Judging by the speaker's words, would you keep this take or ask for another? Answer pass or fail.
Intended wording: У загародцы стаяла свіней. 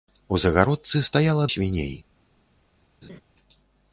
pass